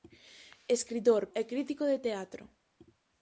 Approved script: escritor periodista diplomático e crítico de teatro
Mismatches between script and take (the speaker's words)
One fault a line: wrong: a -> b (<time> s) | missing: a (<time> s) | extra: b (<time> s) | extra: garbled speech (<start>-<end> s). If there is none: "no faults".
missing: periodista diplomático (1.2 s)